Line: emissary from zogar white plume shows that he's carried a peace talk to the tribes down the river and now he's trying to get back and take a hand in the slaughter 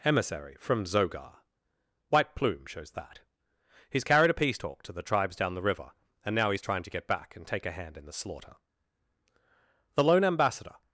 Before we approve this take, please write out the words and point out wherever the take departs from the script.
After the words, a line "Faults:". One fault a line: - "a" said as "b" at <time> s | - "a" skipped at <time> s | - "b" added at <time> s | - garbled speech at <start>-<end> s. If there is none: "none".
emissary from zogar white plume shows that he's carried a peace talk to the tribes down the river and now he's trying to get back and take a hand in the slaughter the lone ambassador
Faults:
- "the lone ambassador" added at 10.0 s